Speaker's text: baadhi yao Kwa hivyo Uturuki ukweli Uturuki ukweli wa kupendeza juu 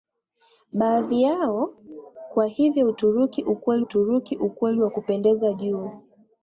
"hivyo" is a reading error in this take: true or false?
false